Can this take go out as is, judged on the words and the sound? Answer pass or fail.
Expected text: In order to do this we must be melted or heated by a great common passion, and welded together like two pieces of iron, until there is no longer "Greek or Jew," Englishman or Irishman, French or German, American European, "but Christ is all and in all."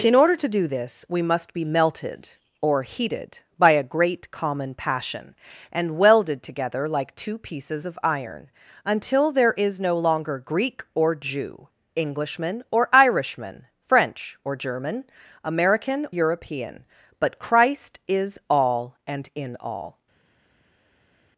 pass